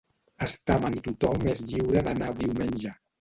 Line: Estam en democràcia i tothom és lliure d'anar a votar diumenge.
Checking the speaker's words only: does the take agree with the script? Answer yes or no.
no